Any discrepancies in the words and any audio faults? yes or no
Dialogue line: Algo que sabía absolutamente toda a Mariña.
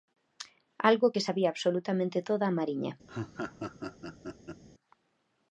yes